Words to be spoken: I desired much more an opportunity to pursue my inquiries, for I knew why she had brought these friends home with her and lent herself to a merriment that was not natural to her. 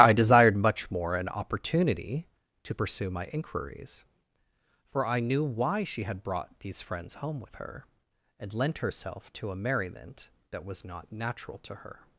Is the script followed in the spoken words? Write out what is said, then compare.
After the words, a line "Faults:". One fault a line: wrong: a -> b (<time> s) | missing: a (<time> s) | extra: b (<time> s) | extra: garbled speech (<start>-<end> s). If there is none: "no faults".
I desired much more an opportunity to pursue my inquiries, for I knew why she had brought these friends home with her and lent herself to a merriment that was not natural to her.
Faults:
no faults